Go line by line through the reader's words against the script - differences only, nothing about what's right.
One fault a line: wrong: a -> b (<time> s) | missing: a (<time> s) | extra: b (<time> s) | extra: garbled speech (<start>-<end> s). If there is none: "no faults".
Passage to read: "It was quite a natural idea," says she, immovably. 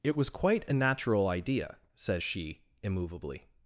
no faults